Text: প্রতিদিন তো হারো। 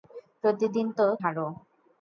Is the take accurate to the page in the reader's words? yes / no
yes